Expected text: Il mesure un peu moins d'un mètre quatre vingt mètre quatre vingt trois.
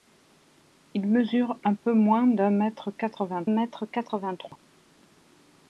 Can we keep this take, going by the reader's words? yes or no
yes